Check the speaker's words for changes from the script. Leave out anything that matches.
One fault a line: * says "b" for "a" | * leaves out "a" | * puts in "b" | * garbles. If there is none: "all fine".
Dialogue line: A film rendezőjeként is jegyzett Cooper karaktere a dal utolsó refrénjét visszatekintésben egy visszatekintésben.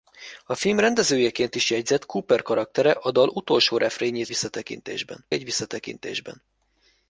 all fine